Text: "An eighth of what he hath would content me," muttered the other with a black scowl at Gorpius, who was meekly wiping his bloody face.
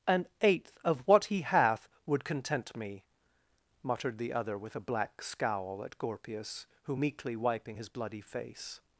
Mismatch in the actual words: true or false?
true